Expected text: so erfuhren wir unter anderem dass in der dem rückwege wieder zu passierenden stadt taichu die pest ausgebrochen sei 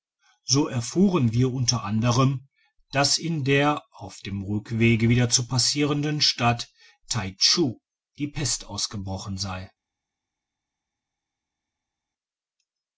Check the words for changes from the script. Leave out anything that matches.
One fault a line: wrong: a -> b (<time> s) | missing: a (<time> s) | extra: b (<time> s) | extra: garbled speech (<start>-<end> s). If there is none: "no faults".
extra: auf (3.9 s)